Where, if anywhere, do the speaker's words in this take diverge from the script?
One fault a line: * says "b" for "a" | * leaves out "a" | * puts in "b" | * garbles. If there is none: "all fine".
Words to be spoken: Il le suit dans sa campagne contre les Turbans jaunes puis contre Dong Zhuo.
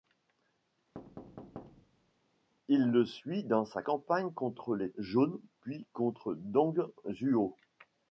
* leaves out "Turbans"